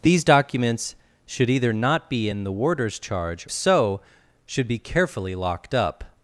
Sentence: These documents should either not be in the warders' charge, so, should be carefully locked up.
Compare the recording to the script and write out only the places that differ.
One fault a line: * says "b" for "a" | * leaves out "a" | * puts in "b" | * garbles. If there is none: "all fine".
all fine